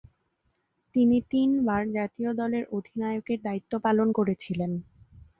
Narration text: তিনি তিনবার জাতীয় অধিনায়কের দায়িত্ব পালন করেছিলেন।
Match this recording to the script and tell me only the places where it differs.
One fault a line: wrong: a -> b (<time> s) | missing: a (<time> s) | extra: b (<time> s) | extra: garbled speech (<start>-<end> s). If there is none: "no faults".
extra: দলের (2.3 s)